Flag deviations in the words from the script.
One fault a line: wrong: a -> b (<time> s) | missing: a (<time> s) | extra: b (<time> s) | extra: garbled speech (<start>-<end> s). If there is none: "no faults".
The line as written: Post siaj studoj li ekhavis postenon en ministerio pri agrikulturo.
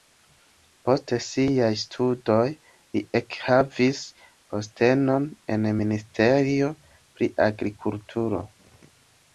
no faults